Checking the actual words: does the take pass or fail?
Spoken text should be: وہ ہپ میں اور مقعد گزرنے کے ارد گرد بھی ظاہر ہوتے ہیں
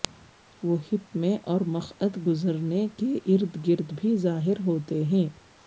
pass